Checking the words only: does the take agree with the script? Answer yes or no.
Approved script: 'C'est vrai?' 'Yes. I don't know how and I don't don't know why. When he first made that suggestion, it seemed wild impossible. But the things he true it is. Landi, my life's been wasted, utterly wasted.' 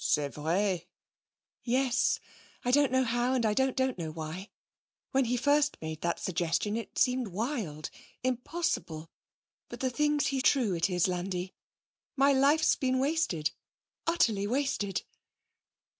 yes